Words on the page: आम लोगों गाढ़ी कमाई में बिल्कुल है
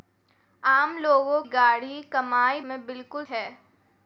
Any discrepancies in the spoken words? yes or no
no